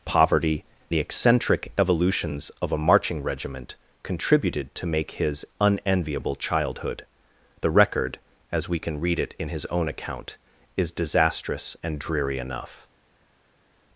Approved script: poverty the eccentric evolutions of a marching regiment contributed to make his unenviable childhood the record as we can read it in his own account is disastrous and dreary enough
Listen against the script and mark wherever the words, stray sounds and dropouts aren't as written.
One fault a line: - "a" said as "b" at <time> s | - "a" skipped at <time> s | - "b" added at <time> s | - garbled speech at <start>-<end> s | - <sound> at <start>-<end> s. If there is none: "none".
none